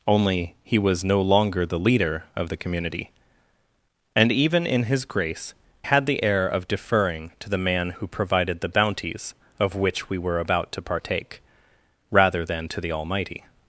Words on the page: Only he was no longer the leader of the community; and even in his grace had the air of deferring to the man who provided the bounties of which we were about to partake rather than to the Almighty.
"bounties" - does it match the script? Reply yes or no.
yes